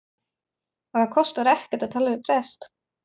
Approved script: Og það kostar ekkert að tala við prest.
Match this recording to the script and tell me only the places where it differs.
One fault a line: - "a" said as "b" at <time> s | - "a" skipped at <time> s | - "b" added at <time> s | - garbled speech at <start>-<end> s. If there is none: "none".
none